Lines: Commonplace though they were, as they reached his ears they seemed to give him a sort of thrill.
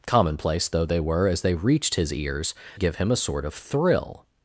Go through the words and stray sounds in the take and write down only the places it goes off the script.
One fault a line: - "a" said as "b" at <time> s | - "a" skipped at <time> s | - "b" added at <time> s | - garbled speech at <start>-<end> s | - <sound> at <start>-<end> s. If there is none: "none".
- "they seemed to" skipped at 2.5 s